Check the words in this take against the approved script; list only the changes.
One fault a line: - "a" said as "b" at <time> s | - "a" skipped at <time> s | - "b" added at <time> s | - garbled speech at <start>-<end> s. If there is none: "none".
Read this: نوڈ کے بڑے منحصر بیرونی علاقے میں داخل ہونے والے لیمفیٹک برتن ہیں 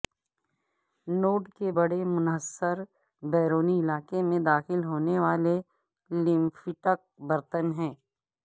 none